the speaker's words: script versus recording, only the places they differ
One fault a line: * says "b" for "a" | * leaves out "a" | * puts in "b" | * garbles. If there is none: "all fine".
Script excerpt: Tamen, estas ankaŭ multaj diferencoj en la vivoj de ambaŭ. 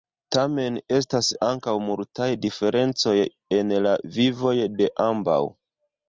all fine